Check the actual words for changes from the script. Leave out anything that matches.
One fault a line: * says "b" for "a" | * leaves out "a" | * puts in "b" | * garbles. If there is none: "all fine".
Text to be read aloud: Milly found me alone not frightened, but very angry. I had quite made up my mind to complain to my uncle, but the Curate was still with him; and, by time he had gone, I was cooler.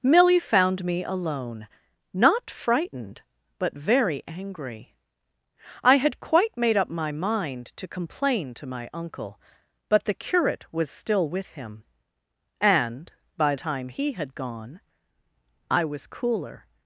all fine